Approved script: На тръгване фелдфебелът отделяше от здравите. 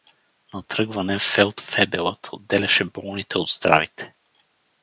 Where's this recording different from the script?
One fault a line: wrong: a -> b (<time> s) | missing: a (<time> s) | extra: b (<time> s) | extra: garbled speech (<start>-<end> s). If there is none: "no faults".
extra: болните (2.8 s)